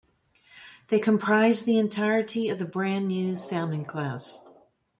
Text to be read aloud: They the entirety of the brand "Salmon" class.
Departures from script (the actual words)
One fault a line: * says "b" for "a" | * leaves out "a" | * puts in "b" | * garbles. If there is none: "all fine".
* puts in "comprised"
* puts in "new"